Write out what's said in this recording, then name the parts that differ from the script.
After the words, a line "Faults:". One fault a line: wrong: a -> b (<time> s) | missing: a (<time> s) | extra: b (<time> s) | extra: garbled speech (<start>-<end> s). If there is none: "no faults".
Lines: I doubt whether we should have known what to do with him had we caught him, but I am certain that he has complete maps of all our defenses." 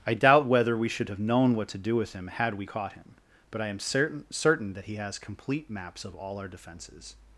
I doubt whether we should have known what to do with him had we caught him, but I am certain certain that he has complete maps of all our defenses."
Faults:
extra: certain (4.3 s)